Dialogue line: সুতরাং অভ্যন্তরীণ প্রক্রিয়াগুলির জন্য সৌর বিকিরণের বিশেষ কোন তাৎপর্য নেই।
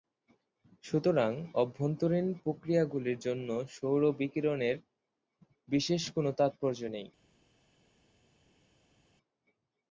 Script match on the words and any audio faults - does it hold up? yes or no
yes